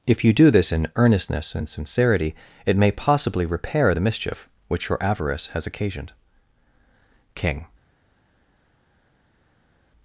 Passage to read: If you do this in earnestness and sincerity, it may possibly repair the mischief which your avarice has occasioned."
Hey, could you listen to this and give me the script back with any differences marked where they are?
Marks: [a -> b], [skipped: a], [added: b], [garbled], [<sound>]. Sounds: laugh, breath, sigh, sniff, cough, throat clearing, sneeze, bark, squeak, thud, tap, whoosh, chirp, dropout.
If you do this in earnestness and sincerity, it may possibly repair the mischief which your avarice has occasioned." [added: King]